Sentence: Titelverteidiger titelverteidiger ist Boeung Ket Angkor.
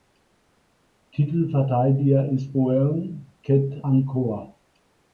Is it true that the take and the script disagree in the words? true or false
true